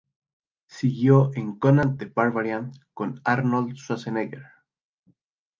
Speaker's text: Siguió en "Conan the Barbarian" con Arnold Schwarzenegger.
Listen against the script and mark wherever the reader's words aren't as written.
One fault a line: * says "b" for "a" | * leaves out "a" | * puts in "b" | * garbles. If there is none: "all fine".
all fine